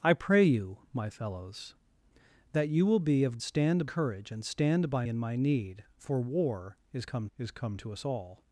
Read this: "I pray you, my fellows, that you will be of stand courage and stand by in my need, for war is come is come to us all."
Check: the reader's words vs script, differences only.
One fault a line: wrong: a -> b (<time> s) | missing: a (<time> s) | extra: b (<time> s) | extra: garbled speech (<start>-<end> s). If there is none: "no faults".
no faults